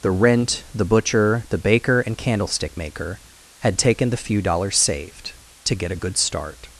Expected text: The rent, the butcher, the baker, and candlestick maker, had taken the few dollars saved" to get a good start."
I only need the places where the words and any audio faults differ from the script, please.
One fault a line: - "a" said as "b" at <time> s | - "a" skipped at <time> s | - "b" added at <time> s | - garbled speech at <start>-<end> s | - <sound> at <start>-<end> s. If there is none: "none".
none